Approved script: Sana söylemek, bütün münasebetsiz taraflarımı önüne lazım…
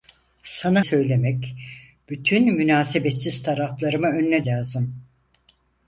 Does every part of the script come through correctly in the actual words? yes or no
yes